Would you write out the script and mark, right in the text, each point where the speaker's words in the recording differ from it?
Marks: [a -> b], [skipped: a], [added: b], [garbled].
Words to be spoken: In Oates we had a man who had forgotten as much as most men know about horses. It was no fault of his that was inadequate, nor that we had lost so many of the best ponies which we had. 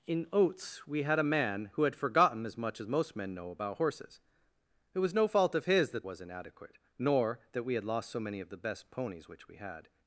In Oates we had a man who had forgotten as much as most men know about horses. It was no fault of his that was inadequate, nor that we had lost so many of the best ponies which we had.